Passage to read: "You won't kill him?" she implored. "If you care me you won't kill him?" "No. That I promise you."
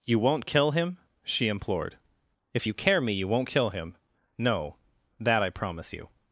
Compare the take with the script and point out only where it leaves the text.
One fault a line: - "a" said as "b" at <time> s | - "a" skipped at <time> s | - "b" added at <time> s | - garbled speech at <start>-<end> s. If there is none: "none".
none